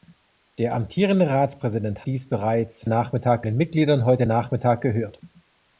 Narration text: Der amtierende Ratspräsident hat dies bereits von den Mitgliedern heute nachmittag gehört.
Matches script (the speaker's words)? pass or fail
fail